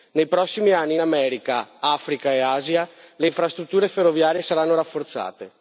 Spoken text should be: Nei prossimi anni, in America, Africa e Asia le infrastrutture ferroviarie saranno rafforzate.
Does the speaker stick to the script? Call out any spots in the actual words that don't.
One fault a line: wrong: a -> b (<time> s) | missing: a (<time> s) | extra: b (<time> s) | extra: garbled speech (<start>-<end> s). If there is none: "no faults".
no faults